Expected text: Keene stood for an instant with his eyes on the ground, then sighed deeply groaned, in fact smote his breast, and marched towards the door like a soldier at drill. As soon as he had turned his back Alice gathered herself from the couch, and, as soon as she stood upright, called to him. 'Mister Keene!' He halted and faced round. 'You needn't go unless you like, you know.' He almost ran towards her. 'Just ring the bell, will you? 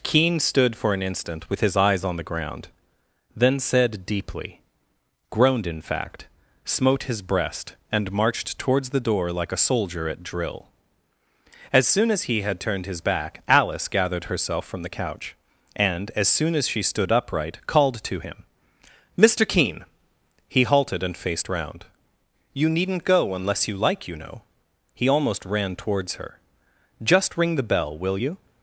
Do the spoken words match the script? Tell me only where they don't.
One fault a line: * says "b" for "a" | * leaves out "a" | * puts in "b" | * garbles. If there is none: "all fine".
* says "said" for "sighed"